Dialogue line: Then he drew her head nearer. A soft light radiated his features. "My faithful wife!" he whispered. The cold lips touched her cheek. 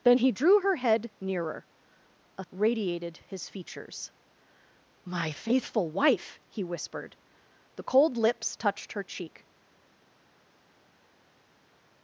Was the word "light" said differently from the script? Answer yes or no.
yes